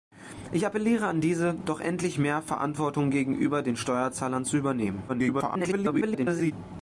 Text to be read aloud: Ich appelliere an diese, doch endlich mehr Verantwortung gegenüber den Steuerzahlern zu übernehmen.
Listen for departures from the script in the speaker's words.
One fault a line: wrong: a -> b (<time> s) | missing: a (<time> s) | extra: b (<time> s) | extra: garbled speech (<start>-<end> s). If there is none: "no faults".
extra: garbled speech (5.1-6.5 s)